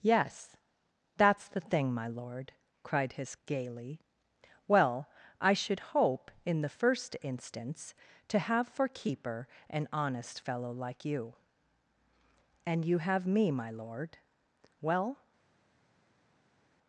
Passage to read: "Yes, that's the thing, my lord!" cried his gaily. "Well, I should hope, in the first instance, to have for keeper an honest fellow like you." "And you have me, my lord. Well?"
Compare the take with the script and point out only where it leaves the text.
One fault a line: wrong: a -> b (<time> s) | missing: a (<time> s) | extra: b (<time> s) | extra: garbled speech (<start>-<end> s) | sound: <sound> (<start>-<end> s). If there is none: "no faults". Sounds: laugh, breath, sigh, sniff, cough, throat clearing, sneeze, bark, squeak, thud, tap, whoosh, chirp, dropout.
no faults